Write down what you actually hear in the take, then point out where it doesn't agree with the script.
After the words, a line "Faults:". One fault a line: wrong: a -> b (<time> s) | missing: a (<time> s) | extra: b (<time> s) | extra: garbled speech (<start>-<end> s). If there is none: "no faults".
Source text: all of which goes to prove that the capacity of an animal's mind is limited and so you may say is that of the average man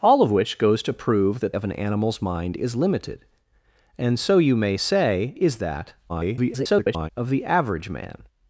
all of which goes to prove that of an animal's mind is limited and so you may say is that [garbled] of the average man
Faults:
missing: the capacity (1.5 s)
extra: garbled speech (6.1-7.1 s)